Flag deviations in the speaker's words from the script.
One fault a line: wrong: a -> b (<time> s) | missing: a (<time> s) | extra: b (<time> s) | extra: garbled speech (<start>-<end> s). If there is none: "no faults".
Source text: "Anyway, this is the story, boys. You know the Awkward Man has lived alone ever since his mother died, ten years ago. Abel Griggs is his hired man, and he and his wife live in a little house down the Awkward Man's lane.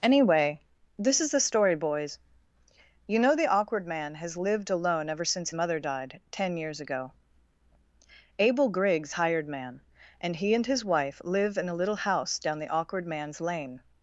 missing: his (5.5 s)
missing: is his (9.1 s)